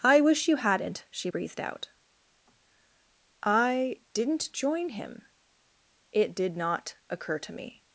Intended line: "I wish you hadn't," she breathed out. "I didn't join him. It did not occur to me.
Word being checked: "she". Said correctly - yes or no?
yes